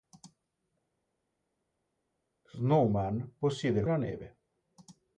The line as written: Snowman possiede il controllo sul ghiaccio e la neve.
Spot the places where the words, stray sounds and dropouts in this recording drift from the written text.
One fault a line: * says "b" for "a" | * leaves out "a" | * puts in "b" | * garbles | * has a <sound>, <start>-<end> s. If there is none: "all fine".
* leaves out "controllo sul ghiaccio"